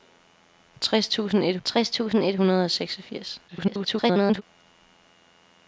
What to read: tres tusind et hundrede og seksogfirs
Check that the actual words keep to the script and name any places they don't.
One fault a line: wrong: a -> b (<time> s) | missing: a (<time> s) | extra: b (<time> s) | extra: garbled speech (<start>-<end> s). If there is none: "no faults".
extra: tres tusind et (1.6 s)
extra: garbled speech (3.5-4.4 s)